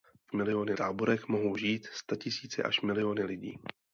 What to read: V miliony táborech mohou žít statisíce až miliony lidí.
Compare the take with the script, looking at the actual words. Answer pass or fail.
pass